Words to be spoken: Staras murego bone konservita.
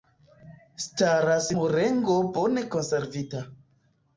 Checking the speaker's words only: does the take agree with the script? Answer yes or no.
yes